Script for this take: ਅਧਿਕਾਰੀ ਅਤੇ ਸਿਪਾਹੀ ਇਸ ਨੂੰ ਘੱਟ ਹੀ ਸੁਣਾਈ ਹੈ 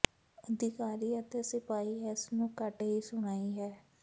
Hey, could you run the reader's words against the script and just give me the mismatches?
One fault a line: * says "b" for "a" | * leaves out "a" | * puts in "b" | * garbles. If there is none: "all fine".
all fine